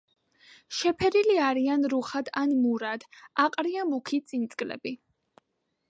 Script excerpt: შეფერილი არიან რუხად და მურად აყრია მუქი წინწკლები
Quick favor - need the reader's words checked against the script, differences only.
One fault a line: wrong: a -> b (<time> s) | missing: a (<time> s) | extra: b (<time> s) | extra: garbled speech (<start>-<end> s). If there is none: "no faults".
wrong: და -> ან (2.4 s)